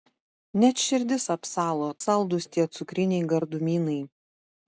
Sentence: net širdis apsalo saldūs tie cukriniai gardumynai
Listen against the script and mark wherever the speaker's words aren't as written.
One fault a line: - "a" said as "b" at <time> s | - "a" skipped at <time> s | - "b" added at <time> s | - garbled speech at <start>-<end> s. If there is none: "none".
none